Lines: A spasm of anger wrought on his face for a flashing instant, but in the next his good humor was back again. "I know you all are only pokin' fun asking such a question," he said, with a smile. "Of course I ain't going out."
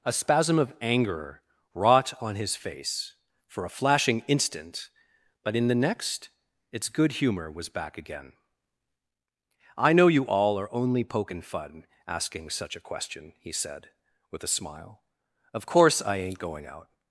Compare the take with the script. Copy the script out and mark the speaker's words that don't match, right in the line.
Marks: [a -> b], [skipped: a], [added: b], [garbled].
A spasm of anger wrought on his face for a flashing instant, but in the next [his -> its] good humor was back again. "I know you all are only pokin' fun asking such a question," he said, with a smile. "Of course I ain't going out."